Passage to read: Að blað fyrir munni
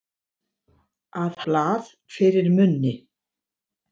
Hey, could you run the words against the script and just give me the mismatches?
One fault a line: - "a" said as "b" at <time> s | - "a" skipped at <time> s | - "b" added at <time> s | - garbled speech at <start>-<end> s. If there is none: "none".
none